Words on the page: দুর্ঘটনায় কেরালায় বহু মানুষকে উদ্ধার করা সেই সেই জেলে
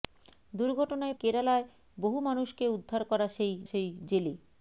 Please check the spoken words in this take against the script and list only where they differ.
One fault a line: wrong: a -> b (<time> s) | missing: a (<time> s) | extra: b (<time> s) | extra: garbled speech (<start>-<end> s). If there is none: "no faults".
no faults